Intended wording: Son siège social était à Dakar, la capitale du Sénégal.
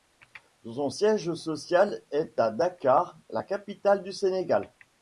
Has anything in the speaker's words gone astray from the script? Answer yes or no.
yes